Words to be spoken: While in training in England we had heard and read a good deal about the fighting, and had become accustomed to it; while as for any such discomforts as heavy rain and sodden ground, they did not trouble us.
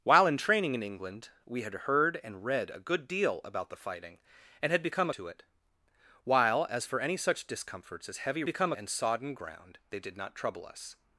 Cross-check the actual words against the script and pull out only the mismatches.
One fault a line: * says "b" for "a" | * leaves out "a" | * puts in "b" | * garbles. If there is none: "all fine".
* leaves out "accustomed"
* says "become" for "rain"